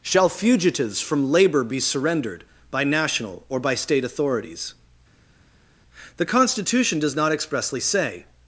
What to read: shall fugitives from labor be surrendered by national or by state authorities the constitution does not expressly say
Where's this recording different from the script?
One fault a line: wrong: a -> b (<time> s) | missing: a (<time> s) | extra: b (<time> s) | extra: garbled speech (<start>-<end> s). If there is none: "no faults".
no faults